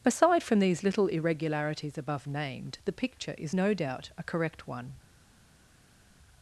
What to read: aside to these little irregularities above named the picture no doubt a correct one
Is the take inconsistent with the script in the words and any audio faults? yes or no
yes